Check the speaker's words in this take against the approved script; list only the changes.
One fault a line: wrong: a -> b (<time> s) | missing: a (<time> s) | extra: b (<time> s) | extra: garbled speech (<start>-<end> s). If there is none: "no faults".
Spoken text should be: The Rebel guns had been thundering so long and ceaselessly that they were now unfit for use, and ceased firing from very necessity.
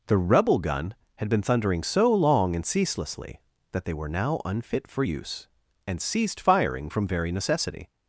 wrong: guns -> gun (0.6 s)